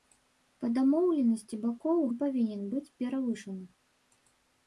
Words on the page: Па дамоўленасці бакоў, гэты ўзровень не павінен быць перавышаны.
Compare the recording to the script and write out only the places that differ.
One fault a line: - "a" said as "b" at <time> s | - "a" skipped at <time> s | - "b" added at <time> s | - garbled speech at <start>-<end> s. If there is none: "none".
- "гэты ўзровень" skipped at 2.0 s